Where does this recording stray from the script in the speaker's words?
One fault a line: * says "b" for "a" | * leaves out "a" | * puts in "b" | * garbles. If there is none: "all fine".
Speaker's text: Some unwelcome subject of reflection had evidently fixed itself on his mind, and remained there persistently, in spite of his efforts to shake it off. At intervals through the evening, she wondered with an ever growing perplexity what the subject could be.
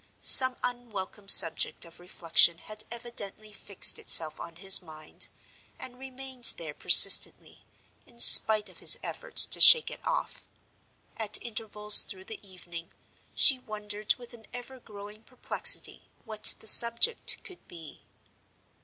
all fine